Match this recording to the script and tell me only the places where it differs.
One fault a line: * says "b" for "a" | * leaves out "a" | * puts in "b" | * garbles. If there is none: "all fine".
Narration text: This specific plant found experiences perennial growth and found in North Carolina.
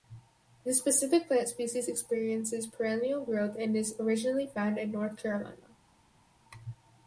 * says "species" for "found"
* puts in "is originally"